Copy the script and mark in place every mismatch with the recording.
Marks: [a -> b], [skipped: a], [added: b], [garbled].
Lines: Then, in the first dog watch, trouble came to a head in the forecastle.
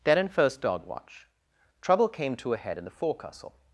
Then, in [skipped: the] first dog watch, trouble came to a head in the forecastle.